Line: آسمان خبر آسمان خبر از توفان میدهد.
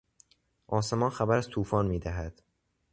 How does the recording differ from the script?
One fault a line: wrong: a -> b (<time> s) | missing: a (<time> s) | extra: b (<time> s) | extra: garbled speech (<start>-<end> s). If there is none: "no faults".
missing: آسمان خبر (1.4 s)